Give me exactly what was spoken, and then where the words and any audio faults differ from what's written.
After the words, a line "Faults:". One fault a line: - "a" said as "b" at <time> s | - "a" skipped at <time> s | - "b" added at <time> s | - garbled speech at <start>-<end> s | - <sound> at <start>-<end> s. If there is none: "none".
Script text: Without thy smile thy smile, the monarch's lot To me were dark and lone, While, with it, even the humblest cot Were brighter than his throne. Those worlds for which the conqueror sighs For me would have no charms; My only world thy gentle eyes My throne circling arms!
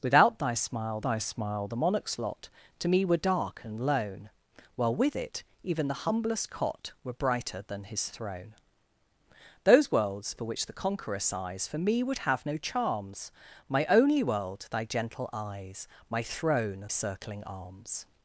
Without thy smile thy smile, the monarch's lot To me were dark and lone, While, with it, even the humblest cot Were brighter than his throne. Those worlds for which the conqueror sighs For me would have no charms; My only world thy gentle eyes My throne circling arms!
Faults:
none